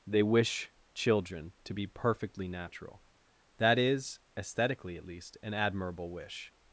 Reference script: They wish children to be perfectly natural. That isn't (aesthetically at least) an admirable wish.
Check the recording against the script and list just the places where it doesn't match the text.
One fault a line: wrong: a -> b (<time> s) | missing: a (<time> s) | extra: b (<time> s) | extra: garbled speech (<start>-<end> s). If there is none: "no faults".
wrong: isn't -> is (3.8 s)